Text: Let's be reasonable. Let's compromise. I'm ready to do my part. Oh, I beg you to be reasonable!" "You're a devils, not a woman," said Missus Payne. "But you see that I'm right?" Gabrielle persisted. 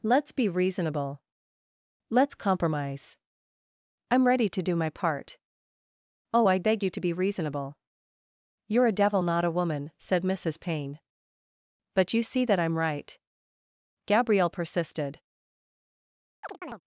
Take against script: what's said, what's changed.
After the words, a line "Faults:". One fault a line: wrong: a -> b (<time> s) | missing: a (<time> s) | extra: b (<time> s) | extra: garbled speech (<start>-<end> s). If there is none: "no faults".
Let's be reasonable. Let's compromise. I'm ready to do my part. Oh, I beg you to be reasonable!" "You're a devil, not a woman," said Missus Payne. "But you see that I'm right?" Gabrielle persisted.
Faults:
wrong: devils -> devil (9.0 s)